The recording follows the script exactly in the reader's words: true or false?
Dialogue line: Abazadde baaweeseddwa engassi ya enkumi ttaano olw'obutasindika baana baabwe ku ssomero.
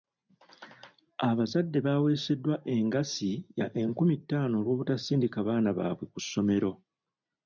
true